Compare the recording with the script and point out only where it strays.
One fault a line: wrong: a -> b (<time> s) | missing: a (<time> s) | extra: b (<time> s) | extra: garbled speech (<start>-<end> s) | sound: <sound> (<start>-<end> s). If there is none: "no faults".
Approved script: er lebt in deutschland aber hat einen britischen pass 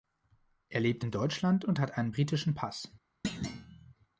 wrong: aber -> und (1.6 s)
sound: thud (3.2-3.9 s)